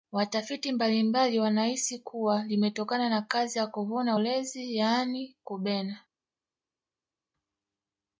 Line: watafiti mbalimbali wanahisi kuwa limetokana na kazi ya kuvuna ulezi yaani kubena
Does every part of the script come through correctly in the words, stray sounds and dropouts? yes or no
yes